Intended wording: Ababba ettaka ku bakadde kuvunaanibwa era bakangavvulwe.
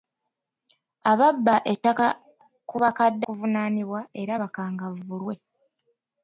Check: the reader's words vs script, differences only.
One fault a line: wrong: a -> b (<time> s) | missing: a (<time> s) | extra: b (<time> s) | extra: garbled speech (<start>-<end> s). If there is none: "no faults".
no faults